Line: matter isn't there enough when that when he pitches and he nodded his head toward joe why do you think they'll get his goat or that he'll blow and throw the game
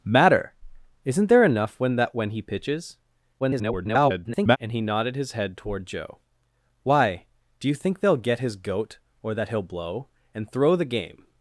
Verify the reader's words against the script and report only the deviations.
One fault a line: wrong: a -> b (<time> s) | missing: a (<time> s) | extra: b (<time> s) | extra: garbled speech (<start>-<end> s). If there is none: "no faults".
extra: garbled speech (3.4-4.6 s)